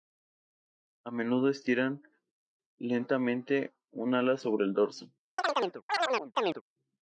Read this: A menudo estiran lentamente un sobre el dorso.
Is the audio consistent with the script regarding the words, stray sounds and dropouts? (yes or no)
no